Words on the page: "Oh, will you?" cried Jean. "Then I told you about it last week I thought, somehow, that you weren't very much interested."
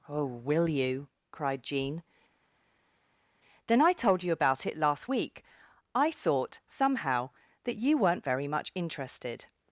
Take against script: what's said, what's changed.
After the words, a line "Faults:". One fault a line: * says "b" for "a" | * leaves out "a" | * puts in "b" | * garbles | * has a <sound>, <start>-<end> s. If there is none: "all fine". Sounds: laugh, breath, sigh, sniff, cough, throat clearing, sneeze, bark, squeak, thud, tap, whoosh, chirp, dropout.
"Oh, will you?" cried Jean. "Then I told you about it last week I thought, somehow, that you weren't very much interested."
Faults:
all fine